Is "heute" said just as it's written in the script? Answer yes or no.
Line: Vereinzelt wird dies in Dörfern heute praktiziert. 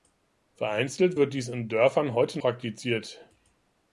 yes